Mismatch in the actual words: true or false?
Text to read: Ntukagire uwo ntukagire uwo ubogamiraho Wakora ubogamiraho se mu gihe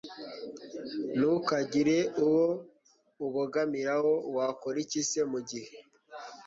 true